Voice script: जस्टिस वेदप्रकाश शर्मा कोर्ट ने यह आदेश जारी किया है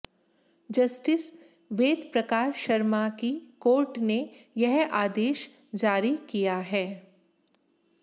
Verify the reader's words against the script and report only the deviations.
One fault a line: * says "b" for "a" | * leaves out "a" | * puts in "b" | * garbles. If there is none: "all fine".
* puts in "की"